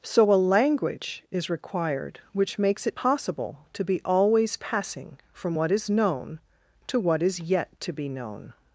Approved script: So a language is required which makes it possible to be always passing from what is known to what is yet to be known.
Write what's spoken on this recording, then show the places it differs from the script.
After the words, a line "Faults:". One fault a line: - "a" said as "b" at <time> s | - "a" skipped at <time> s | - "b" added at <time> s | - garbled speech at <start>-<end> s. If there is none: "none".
So a language is required which makes it possible to be always passing from what is known to what is yet to be known.
Faults:
none